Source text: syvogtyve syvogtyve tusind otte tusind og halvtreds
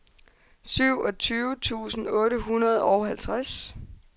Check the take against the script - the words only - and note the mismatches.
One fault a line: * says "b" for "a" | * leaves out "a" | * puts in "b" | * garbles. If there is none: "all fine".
* leaves out "syvogtyve"
* says "hundrede" for "tusind"